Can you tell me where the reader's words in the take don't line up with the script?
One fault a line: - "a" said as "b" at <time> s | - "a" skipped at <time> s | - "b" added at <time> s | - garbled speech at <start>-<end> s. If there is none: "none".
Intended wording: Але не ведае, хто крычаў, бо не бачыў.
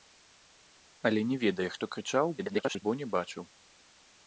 - garbled speech at 2.4-2.8 s